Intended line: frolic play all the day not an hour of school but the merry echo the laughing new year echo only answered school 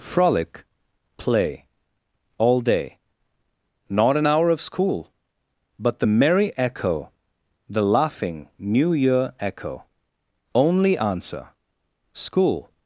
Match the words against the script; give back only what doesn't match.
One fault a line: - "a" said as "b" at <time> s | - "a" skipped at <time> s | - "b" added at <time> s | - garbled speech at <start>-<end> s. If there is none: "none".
- "the" skipped at 2.6 s
- "answered" said as "answer" at 11.0 s